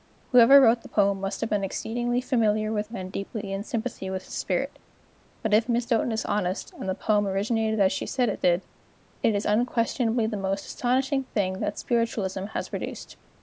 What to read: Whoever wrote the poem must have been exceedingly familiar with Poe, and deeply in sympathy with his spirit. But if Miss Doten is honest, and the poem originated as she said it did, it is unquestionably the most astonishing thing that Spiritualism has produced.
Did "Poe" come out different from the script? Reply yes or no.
yes